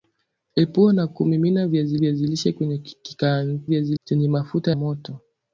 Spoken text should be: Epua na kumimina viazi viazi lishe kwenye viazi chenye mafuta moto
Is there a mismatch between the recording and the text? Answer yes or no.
no